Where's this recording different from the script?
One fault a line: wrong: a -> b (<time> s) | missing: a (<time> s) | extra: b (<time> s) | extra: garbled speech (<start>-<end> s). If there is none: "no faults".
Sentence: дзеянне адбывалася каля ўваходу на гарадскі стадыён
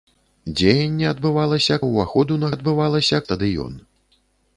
missing: каля (1.8 s)
wrong: гарадскі -> адбывалася (2.5 s)